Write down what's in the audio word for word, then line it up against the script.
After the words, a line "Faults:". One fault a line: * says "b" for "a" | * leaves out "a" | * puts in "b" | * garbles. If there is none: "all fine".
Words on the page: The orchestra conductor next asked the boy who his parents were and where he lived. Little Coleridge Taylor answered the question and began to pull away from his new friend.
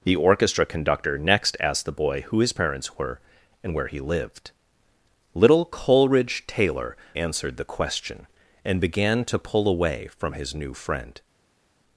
The orchestra conductor next asked the boy who his parents were and where he lived. Little Coleridge Taylor answered the question and began to pull away from his new friend.
Faults:
all fine